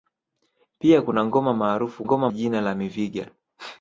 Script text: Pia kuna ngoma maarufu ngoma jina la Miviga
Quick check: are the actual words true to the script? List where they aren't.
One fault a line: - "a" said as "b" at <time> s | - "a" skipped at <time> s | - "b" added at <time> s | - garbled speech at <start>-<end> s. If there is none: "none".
none